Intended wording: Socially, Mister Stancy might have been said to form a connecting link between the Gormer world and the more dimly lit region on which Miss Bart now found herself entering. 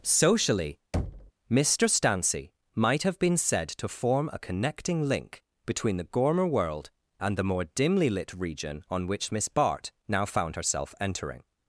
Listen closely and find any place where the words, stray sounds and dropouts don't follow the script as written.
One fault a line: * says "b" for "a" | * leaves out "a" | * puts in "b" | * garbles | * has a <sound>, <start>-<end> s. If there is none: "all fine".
* has a thud, 0.9-1.3 s